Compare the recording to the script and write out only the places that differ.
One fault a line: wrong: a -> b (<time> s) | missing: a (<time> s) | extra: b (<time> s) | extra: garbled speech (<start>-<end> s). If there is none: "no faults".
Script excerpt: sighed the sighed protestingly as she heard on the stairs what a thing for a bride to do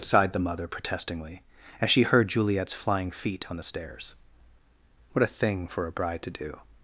wrong: sighed -> mother (0.4 s)
extra: juliet's flying feet (2.3 s)